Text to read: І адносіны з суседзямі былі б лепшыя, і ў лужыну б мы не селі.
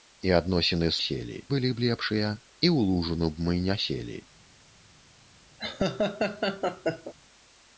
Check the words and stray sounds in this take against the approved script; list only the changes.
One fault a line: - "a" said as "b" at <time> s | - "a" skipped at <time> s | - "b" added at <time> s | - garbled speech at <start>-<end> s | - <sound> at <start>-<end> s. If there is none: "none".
- "суседзямі" said as "селі" at 1.1 s
- laugh at 5.6-7.1 s